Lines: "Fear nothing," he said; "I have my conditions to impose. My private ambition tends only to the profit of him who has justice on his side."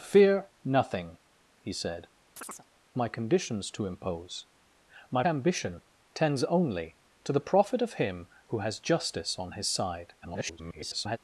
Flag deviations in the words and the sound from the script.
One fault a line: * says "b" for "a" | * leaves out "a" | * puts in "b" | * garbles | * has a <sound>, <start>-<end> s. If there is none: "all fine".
* leaves out "I have"
* has a chirp, 2.4-2.7 s
* leaves out "private"
* garbles